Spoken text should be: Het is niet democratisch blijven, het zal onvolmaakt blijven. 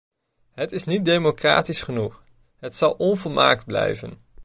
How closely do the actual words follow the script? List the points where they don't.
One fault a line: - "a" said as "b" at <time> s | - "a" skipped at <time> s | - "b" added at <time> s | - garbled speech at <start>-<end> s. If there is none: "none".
- "blijven" said as "genoeg" at 1.8 s